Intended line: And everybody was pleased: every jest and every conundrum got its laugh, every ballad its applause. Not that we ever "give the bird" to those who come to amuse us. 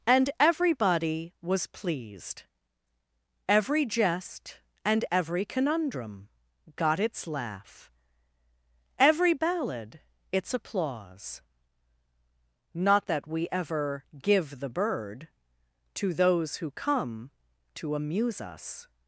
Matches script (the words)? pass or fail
pass